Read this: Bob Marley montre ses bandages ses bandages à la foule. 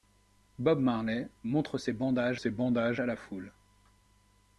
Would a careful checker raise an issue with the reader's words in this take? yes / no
no